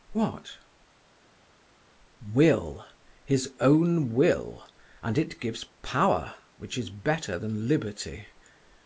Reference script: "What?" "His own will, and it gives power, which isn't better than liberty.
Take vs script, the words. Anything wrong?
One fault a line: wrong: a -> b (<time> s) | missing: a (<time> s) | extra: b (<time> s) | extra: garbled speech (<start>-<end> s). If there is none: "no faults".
extra: Will (2.3 s)
wrong: isn't -> is (6.8 s)